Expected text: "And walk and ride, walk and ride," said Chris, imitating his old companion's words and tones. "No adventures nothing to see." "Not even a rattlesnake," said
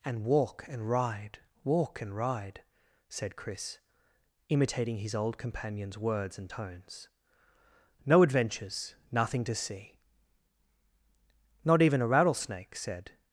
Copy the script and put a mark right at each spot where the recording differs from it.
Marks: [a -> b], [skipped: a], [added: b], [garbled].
"And walk and ride, walk and ride," said Chris, imitating his old companion's words and tones. "No adventures nothing to see." "Not even a rattlesnake," said